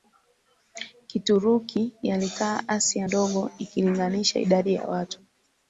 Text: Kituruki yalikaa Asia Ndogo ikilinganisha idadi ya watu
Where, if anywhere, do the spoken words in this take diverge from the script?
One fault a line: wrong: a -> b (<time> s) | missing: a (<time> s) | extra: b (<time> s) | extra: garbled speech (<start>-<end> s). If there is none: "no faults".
no faults